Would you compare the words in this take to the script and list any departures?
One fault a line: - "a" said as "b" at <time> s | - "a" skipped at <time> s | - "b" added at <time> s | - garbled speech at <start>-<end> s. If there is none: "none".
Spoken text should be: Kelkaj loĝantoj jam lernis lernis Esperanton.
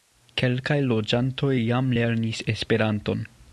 - "lernis" skipped at 2.4 s